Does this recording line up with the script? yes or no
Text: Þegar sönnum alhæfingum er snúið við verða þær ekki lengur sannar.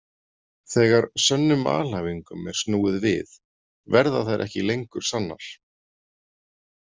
yes